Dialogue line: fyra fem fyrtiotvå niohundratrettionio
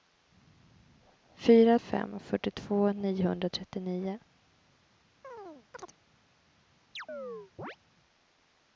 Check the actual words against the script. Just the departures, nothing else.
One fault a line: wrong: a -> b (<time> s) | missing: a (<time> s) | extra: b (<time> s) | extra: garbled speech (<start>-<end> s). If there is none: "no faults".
no faults